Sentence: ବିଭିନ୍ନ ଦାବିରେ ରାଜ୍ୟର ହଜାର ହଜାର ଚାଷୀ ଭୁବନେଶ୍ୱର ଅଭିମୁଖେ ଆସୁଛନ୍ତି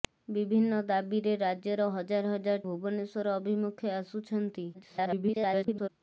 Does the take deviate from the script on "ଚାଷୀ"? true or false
true